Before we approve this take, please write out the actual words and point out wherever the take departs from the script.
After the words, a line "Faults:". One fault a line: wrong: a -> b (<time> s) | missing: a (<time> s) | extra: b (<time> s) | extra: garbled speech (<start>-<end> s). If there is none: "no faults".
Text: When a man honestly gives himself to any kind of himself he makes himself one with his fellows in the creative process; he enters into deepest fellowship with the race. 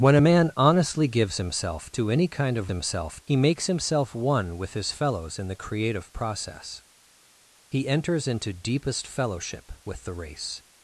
When a man honestly gives himself to any kind of himself he makes himself one with his fellows in the creative process; he enters into deepest fellowship with the race.
Faults:
no faults